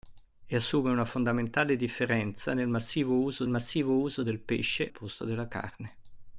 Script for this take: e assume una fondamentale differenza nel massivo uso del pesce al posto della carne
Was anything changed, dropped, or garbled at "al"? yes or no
yes